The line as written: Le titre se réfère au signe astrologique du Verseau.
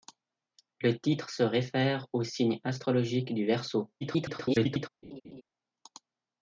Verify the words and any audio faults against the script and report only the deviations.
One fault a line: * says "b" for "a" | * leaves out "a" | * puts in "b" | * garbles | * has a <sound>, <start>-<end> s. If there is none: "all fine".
* garbles
* has a laugh, 5.0-5.4 s